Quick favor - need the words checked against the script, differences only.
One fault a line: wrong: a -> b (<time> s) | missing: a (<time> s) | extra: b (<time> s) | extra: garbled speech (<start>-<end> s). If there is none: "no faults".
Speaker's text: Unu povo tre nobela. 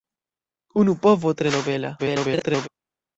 extra: garbled speech (2.0-2.7 s)